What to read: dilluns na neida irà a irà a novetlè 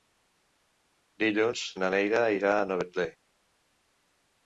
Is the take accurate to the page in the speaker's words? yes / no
no